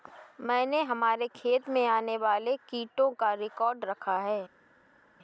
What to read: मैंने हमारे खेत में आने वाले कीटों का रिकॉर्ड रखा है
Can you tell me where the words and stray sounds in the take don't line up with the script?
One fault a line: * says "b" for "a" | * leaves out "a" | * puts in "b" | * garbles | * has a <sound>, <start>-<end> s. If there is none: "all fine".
all fine